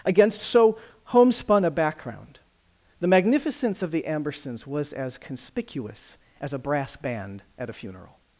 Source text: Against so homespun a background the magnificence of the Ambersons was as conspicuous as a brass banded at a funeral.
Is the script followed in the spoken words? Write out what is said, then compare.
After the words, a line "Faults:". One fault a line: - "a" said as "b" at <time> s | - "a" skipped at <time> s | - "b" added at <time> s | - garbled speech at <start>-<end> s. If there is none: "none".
Against so homespun a background the magnificence of the Ambersons was as conspicuous as a brass band at a funeral.
Faults:
- "banded" said as "band" at 7.0 s